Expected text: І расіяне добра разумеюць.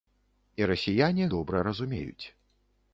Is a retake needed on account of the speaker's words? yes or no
no